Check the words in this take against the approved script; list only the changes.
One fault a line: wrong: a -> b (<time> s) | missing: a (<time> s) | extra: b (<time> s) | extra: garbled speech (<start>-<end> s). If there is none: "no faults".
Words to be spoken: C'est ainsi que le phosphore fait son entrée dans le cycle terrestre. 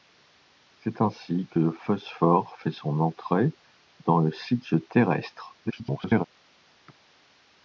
extra: garbled speech (5.6-6.2 s)